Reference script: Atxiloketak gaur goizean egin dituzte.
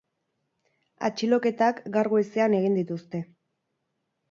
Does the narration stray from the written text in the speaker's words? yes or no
no